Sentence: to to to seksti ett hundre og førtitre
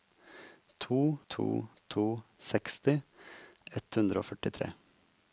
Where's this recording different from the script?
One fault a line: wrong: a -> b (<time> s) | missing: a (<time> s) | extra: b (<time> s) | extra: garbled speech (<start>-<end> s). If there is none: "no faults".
no faults